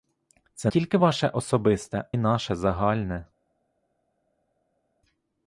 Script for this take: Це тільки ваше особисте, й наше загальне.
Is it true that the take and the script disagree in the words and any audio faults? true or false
false